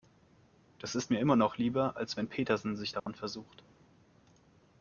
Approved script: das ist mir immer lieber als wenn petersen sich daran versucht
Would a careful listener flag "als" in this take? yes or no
no